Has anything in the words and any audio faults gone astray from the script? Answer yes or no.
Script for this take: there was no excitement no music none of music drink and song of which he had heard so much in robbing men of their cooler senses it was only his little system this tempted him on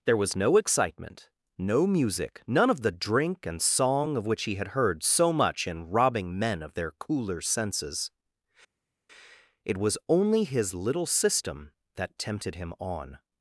yes